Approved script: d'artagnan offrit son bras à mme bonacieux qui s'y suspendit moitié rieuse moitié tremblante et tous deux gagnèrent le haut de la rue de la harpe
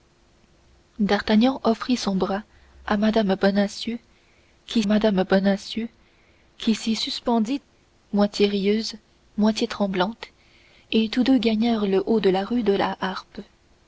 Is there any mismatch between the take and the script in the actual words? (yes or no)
yes